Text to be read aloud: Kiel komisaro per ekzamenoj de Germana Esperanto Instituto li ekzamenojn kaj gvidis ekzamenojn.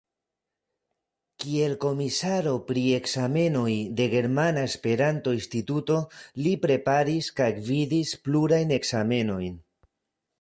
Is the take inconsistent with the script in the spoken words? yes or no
yes